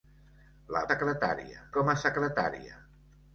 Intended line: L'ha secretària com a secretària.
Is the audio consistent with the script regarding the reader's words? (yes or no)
yes